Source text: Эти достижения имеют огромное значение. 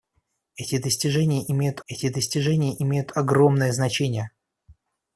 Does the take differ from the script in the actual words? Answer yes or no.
yes